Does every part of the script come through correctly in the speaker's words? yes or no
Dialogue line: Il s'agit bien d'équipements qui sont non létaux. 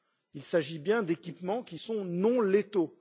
yes